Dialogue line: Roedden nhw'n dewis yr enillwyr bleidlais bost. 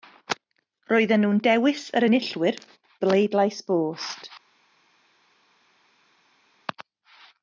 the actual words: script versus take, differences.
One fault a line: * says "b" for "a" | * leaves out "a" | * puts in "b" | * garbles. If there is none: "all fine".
all fine